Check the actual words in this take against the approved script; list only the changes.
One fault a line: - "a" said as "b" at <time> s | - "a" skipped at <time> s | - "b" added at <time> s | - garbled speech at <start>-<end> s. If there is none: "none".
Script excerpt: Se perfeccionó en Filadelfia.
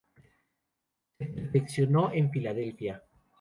none